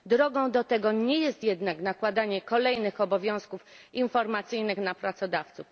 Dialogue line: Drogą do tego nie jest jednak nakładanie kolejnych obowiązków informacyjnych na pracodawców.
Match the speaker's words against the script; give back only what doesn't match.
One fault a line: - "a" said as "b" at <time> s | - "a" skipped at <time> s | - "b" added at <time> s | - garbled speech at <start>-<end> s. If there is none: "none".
none